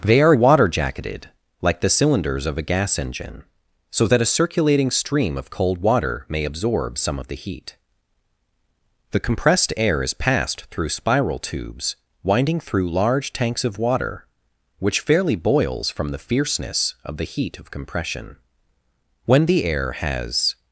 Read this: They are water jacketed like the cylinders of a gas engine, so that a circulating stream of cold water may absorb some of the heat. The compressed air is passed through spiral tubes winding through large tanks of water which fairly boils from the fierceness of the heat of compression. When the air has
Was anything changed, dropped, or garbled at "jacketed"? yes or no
no